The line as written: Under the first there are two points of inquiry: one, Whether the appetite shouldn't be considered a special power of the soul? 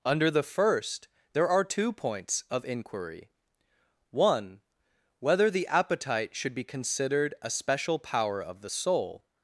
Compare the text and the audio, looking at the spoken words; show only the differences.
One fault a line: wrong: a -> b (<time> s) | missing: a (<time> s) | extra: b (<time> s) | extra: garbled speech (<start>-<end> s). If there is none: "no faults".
wrong: shouldn't -> should (6.3 s)